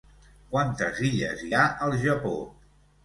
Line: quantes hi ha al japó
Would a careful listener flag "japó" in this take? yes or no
no